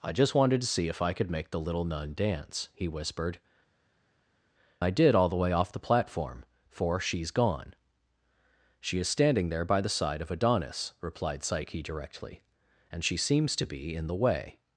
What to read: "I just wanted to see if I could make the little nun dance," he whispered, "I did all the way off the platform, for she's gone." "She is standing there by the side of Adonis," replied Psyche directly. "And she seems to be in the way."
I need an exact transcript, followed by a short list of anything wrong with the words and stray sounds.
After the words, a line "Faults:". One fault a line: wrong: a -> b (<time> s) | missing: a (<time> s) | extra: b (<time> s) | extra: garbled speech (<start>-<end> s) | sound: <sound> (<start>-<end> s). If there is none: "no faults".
"I just wanted to see if I could make the little nun dance," he whispered, "I did all the way off the platform, for she's gone." "She is standing there by the side of Adonis," replied Psyche directly. "And she seems to be in the way."
Faults:
no faults